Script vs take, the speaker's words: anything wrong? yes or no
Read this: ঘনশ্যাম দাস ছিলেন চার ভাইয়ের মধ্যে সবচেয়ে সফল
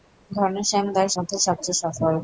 yes